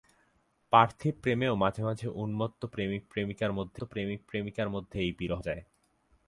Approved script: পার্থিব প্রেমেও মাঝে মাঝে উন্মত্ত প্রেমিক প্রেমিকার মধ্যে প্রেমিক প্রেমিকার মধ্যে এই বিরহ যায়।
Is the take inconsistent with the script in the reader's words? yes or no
no